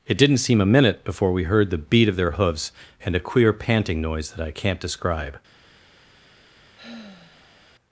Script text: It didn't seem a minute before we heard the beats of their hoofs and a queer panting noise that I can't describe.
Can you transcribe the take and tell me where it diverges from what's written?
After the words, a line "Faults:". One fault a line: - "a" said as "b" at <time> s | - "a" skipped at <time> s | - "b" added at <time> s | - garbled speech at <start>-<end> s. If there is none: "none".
It didn't seem a minute before we heard the beat of their hoofs and a queer panting noise that I can't describe.
Faults:
- "beats" said as "beat" at 1.8 s